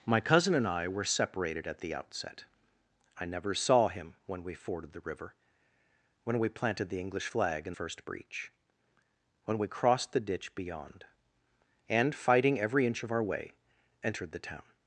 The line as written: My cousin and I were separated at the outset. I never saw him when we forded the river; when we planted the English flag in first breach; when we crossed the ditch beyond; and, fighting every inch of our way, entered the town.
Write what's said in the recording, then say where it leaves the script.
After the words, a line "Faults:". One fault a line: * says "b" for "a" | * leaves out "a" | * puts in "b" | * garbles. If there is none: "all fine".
My cousin and I were separated at the outset. I never saw him when we forded the river; when we planted the English flag in first breach; when we crossed the ditch beyond; and, fighting every inch of our way, entered the town.
Faults:
all fine